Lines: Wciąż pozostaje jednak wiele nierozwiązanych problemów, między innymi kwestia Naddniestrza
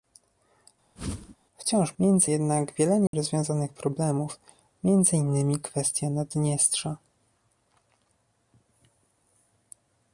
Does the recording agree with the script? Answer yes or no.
no